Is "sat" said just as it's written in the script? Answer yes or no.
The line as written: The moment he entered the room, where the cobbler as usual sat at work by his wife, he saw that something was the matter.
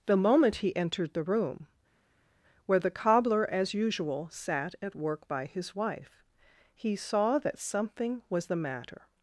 yes